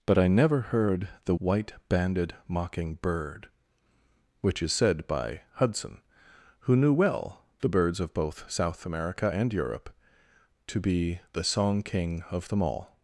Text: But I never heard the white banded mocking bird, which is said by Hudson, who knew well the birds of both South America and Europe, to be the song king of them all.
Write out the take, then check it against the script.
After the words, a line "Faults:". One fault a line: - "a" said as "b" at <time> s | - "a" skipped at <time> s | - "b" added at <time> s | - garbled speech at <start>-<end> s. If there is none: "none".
But I never heard the white banded mocking bird, which is said by Hudson, who knew well the birds of both South America and Europe, to be the song king of them all.
Faults:
none